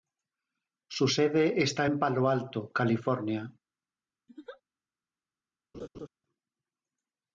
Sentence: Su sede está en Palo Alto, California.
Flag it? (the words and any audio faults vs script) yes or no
yes